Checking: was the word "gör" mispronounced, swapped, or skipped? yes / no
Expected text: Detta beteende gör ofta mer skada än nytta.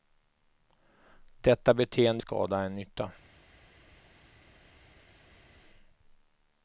yes